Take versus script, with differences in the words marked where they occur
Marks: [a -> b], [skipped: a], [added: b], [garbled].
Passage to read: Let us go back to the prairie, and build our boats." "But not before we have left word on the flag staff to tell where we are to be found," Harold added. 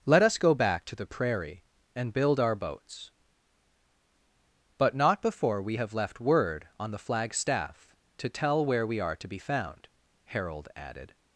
Let us go back to the prairie, and build our boats." "But not before we have left word on the flag staff to tell where we are to be found," Harold added.